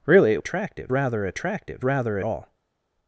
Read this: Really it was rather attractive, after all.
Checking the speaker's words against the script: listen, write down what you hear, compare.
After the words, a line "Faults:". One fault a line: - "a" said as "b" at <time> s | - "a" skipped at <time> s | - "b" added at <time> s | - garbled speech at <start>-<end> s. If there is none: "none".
Really it attractive rather attractive, rather all.
Faults:
- "was" said as "attractive" at 0.4 s
- "after" said as "rather" at 1.8 s